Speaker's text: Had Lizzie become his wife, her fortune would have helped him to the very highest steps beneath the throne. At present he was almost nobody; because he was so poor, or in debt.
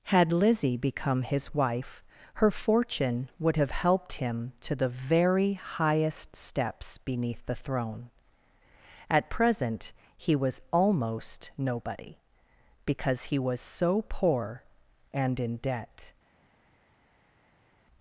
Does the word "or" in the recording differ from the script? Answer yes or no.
yes